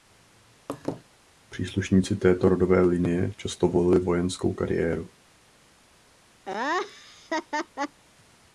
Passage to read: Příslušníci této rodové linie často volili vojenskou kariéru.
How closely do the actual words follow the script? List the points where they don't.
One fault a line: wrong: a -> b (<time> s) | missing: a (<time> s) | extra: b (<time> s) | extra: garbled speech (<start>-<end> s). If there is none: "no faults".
no faults